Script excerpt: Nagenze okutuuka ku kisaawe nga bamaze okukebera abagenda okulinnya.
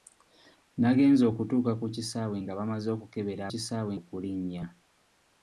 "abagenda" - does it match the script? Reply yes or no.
no